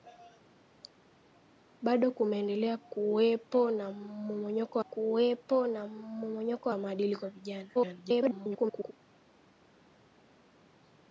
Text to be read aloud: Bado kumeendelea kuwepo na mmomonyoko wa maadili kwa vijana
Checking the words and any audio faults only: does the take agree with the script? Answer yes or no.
no